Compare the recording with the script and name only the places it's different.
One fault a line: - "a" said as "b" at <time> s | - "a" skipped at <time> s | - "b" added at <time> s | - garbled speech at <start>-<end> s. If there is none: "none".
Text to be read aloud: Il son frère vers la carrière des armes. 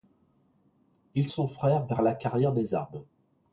none